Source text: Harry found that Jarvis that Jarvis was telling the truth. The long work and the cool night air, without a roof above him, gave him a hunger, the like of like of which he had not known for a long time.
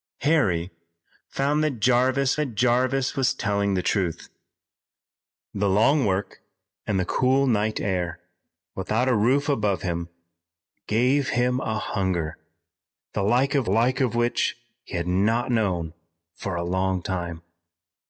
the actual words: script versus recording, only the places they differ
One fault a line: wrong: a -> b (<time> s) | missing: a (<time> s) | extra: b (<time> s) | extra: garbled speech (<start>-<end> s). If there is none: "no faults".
no faults